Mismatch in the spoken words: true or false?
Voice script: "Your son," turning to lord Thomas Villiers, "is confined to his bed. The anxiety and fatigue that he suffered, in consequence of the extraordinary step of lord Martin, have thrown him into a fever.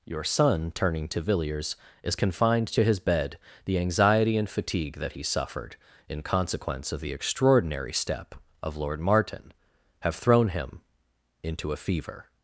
true